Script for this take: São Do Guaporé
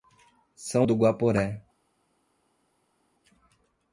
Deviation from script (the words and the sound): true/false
false